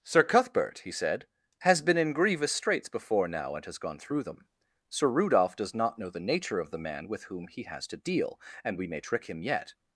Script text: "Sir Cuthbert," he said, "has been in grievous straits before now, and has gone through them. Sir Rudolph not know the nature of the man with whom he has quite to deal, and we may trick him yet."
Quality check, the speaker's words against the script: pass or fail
fail